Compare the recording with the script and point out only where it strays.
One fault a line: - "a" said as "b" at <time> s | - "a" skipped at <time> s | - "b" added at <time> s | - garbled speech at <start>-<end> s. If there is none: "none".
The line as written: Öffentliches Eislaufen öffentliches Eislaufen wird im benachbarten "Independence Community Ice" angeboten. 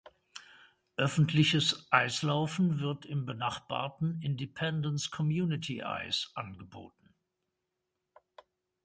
- "öffentliches Eislaufen" skipped at 2.8 s